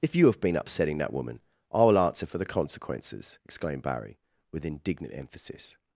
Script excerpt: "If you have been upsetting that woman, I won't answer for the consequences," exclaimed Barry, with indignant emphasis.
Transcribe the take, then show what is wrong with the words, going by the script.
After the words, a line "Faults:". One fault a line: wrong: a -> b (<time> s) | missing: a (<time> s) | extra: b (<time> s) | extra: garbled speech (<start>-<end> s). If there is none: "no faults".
"If you have been upsetting that woman, I will answer for the consequences," exclaimed Barry, with indignant emphasis.
Faults:
wrong: won't -> will (1.8 s)